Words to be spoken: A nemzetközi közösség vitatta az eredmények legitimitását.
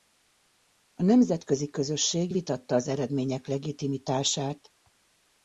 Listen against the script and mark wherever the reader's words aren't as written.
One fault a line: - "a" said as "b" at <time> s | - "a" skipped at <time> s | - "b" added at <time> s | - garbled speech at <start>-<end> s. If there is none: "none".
none